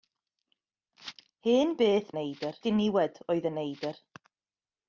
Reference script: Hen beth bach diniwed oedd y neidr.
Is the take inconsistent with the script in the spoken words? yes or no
yes